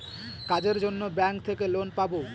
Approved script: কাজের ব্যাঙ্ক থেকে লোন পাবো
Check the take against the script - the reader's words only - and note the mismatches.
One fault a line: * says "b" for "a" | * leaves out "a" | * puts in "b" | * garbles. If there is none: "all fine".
* puts in "জন্য"